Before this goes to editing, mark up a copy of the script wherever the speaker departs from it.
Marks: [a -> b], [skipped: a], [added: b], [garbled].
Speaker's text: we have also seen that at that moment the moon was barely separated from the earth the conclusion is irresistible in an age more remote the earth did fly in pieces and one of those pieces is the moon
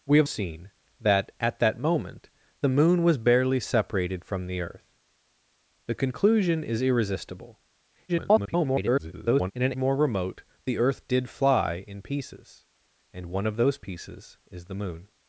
we have [skipped: also] seen that at that moment the moon was barely separated from the earth the conclusion is irresistible [garbled] in an [skipped: age] more remote the earth did fly in pieces and one of those pieces is the moon